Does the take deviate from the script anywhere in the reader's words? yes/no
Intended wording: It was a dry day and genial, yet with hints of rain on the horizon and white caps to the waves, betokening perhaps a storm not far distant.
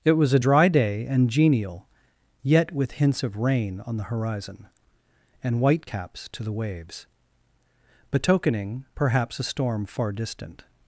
yes